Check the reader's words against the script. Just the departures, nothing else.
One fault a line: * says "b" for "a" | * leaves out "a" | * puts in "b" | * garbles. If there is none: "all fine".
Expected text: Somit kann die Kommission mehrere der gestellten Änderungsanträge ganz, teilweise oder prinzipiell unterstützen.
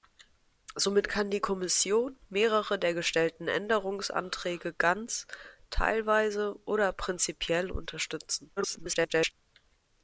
* garbles